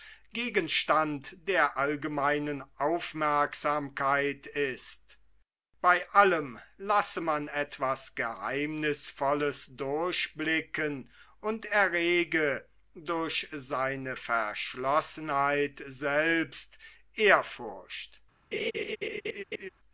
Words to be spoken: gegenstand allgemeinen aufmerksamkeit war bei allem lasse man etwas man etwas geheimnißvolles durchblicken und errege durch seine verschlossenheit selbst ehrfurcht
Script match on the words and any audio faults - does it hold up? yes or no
no